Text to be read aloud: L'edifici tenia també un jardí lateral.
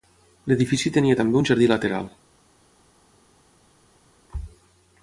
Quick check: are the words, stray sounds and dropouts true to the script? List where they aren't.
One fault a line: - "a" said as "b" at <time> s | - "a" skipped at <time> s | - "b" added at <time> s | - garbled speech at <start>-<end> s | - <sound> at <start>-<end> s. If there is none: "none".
none